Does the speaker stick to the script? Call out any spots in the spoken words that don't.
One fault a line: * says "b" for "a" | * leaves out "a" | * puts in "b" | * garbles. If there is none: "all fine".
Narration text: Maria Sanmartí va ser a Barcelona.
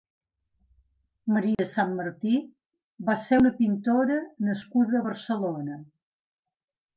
* puts in "una pintora nascuda"